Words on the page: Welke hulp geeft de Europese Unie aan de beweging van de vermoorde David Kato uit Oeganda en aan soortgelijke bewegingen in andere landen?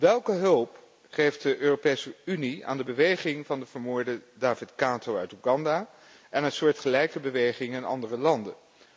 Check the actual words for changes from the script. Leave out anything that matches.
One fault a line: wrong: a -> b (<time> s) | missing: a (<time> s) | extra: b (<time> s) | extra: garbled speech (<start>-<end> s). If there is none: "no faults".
no faults